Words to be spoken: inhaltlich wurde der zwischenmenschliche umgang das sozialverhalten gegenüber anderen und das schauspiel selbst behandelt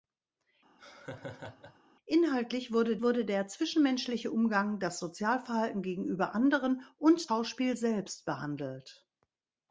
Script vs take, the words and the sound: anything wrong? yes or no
yes